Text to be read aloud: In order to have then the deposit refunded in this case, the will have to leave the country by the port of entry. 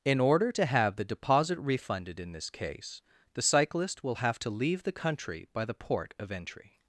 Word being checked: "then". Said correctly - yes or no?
no